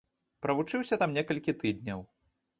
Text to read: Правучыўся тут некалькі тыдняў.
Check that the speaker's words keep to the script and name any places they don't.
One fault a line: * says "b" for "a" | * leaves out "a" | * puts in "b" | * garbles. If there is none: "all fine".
* says "там" for "тут"